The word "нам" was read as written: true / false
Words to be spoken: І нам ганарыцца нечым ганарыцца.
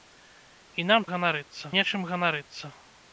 true